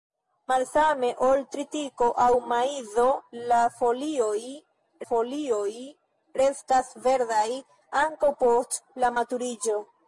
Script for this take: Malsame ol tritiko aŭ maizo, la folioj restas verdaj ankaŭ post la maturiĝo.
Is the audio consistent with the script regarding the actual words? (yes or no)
no